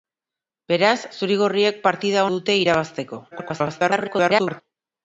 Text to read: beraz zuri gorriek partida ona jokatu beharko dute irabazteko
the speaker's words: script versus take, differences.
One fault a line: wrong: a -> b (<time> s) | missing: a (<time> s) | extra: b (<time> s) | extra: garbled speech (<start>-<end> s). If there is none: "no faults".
missing: ona jokatu beharko (2.2 s)
extra: garbled speech (3.3-4.6 s)